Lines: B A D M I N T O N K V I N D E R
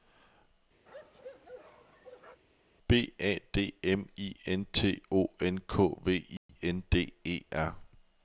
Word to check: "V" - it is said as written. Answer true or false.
true